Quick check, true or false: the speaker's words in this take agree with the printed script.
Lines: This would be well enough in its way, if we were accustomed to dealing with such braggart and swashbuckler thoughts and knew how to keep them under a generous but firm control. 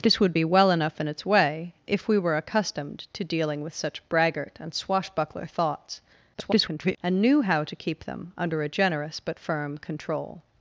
false